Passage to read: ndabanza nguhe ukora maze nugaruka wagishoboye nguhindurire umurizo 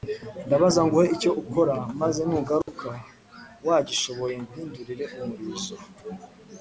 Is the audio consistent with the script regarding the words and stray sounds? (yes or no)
no